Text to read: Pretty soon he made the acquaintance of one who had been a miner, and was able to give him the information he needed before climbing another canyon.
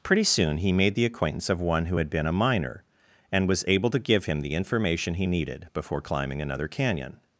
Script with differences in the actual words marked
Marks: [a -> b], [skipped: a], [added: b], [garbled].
Pretty soon he made the acquaintance of one who had been a miner, and was able to give him the information he needed before climbing another canyon.